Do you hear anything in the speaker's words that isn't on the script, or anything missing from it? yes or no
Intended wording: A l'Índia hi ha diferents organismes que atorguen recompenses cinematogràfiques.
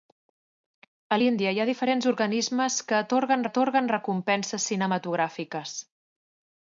yes